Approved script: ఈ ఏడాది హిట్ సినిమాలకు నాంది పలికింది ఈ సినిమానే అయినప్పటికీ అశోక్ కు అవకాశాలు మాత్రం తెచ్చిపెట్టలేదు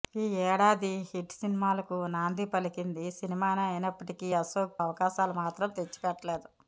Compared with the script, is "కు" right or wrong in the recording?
wrong